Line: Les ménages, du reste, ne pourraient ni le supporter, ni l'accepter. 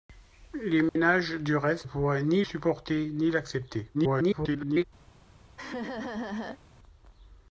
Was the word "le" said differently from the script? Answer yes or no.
yes